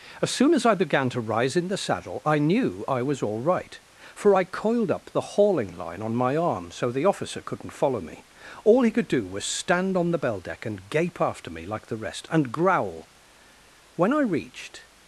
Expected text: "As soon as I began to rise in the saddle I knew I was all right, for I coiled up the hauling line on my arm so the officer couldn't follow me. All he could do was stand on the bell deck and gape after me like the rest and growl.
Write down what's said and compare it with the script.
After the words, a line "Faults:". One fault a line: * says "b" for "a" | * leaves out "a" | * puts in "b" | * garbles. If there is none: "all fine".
"As soon as I began to rise in the saddle I knew I was all right, for I coiled up the hauling line on my arm so the officer couldn't follow me. All he could do was stand on the bell deck and gape after me like the rest and growl. "When I reached
Faults:
* puts in "When I reached"